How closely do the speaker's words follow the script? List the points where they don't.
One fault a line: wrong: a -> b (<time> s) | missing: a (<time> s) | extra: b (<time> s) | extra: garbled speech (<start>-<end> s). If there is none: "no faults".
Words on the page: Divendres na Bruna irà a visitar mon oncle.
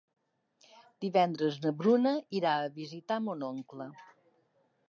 no faults